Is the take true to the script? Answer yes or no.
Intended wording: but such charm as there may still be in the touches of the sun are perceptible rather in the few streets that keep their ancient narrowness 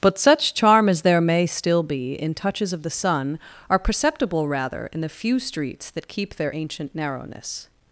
no